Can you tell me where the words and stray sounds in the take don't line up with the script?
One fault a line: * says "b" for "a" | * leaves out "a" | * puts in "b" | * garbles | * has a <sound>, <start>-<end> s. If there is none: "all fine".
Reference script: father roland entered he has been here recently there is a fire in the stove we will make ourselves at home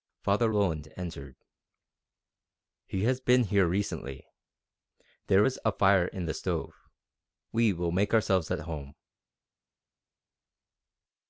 all fine